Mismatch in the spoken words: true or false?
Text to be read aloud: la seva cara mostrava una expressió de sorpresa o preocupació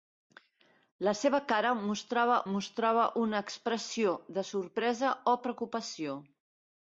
true